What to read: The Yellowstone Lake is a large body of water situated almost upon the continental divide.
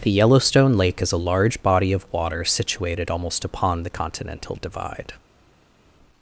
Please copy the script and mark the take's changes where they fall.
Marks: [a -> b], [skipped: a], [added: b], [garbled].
The Yellowstone Lake is a large body of water situated almost upon the continental divide.